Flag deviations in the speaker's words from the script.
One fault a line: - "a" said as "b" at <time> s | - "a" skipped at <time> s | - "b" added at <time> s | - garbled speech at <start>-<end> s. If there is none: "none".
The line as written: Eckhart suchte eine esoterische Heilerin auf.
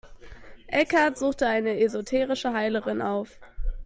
none